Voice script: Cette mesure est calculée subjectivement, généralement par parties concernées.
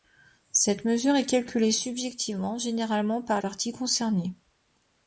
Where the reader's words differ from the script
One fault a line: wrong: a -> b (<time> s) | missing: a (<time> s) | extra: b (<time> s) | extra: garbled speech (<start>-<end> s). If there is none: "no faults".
no faults